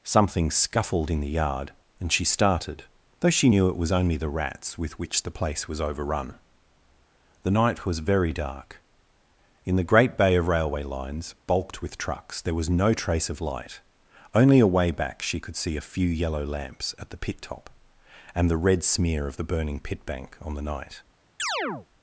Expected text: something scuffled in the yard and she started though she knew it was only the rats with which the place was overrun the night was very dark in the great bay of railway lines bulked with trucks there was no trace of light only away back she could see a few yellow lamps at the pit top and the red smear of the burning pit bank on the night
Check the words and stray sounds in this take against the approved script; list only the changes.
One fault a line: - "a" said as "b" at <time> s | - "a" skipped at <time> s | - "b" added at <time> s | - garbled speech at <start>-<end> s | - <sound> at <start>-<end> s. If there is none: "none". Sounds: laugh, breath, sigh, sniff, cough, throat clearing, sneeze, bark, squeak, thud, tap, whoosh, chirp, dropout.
- chirp at 21.4-21.9 s